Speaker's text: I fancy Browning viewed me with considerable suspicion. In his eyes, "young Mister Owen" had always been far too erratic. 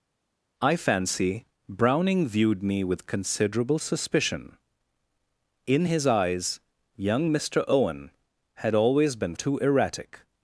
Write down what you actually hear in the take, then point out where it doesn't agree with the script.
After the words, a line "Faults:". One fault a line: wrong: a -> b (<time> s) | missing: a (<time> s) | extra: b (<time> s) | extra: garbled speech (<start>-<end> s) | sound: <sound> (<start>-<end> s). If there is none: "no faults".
I fancy Browning viewed me with considerable suspicion. In his eyes, "young Mister Owen" had always been too erratic.
Faults:
missing: far (9.3 s)